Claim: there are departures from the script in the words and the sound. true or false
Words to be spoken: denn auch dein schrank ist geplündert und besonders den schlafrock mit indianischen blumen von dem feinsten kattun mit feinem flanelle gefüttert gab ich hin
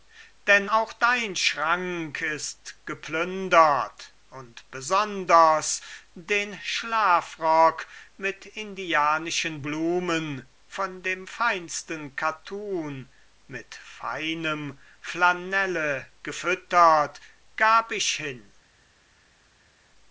false